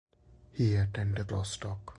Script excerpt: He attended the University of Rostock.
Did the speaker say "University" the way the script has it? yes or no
no